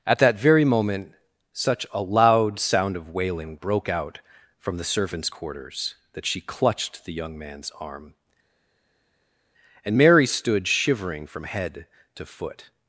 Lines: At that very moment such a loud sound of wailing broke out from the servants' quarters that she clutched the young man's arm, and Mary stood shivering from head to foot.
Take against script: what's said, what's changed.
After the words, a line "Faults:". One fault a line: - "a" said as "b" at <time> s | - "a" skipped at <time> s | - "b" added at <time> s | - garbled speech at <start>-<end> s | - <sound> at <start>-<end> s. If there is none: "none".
At that very moment such a loud sound of wailing broke out from the servants' quarters that she clutched the young man's arm, and Mary stood shivering from head to foot.
Faults:
none